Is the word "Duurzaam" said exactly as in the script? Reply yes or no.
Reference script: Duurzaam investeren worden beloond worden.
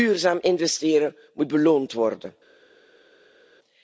yes